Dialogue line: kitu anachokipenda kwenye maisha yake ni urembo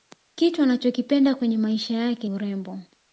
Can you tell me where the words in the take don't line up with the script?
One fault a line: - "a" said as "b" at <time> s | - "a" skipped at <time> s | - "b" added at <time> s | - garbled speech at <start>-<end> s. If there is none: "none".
- "ni" skipped at 2.3 s